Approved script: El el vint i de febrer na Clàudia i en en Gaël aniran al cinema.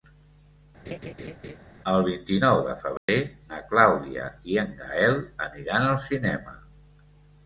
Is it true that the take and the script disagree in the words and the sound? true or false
true